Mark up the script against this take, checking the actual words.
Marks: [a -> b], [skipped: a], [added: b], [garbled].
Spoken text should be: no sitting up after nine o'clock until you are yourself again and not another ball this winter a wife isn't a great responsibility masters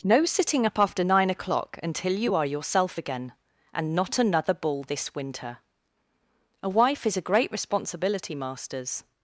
no sitting up after nine o'clock until you are yourself again and not another ball this winter a wife [isn't -> is] a great responsibility masters